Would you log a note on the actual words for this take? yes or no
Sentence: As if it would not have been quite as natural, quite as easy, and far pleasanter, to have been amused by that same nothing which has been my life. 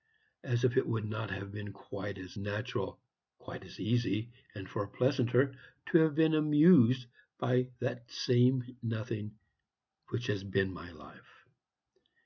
no